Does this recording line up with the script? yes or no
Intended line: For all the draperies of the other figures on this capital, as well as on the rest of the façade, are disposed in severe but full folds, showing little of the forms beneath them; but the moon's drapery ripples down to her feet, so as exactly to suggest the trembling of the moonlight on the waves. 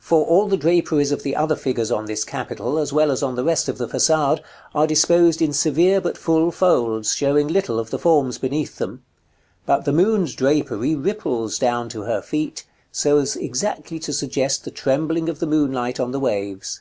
yes